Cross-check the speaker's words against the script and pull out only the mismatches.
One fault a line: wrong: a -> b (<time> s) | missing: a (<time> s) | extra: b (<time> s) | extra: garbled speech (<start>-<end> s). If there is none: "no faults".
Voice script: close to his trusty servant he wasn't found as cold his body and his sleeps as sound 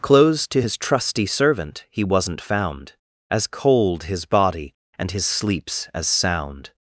no faults